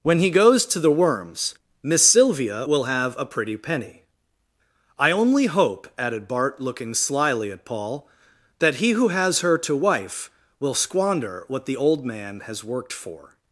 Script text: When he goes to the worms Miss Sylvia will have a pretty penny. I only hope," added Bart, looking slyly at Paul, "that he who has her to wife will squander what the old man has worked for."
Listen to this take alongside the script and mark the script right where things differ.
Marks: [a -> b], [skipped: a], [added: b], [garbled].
When he goes to the worms Miss Sylvia will have a pretty penny. I only hope," added Bart, looking slyly at Paul, "that he who has her to wife will squander what the old man has worked for."